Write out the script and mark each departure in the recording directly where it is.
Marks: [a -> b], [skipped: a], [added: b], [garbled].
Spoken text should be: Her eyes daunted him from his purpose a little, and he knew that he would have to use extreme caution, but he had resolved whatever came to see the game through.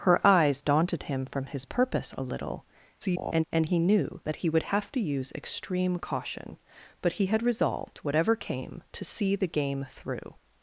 Her eyes daunted him from his purpose a little, [garbled] and he knew that he would have to use extreme caution, but he had resolved whatever came to see the game through.